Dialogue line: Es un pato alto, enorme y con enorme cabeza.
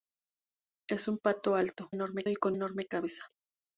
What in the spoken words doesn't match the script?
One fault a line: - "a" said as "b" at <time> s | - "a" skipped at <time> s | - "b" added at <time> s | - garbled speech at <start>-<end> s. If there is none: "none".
none